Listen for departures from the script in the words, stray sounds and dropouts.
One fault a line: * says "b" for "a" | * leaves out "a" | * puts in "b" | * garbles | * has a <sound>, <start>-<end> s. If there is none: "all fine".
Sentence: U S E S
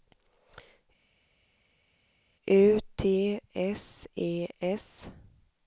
* puts in "T"